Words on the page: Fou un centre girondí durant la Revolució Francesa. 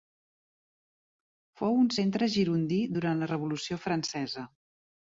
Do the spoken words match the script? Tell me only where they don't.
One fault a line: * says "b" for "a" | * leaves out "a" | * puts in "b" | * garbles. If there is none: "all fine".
all fine